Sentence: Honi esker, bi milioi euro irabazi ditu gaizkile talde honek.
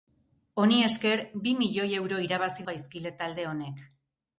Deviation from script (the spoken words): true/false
true